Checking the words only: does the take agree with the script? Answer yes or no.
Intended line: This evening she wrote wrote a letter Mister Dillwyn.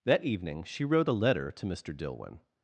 no